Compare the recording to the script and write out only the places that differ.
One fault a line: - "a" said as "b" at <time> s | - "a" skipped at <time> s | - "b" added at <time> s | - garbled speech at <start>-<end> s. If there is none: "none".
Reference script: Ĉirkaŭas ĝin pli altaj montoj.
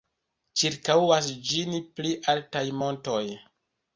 none